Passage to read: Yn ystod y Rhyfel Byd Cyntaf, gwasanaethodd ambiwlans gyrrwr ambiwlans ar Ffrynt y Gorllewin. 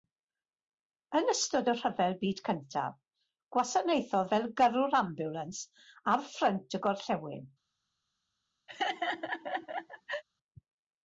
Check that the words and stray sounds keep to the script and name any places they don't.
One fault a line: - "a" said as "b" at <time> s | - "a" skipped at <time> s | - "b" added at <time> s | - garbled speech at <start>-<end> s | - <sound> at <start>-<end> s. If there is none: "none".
- "ambiwlans" said as "fel" at 4.3 s
- laugh at 8.7-10.2 s